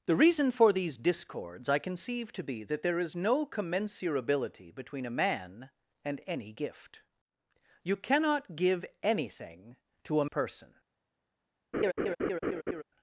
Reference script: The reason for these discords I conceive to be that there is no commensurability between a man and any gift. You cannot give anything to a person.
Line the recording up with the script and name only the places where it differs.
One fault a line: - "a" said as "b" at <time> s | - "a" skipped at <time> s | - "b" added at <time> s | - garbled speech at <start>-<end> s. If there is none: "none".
none